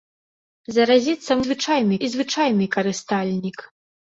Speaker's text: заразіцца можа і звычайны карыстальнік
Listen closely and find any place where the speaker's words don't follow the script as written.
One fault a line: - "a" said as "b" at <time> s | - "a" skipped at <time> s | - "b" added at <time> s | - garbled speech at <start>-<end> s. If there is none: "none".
- "можа" said as "звычайны" at 1.5 s